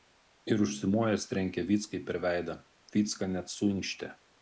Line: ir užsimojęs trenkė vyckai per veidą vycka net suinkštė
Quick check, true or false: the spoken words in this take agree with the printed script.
true